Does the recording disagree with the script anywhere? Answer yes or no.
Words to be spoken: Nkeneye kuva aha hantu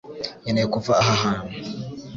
no